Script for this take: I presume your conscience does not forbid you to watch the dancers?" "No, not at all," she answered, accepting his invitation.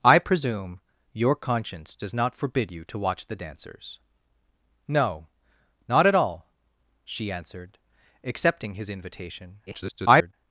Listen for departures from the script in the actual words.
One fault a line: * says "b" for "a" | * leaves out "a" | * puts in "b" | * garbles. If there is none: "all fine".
* garbles